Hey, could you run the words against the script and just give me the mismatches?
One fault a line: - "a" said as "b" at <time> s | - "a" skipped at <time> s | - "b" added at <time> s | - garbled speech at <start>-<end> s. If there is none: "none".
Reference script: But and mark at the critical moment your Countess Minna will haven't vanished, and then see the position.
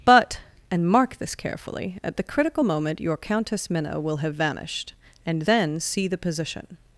- "this carefully" added at 1.2 s
- "haven't" said as "have" at 4.2 s